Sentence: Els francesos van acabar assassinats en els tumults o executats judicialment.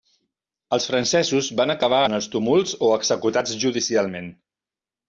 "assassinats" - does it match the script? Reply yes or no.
no